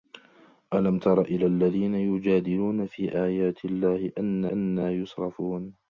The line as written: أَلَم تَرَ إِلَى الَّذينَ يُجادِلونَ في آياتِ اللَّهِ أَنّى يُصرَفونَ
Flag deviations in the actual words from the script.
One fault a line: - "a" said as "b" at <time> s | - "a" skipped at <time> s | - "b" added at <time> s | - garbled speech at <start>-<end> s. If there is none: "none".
- "أَنّى" added at 4.5 s